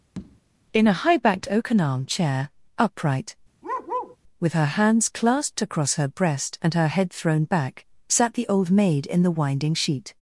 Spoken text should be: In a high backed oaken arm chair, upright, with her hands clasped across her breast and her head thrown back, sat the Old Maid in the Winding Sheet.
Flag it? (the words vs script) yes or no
no